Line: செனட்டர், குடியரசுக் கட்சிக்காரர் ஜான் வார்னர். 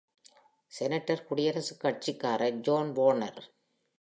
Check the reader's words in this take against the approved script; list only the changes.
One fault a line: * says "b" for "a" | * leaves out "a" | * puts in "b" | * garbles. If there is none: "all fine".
all fine